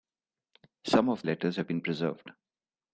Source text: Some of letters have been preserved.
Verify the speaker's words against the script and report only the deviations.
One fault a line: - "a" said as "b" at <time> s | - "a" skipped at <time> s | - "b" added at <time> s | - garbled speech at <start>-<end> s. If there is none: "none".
none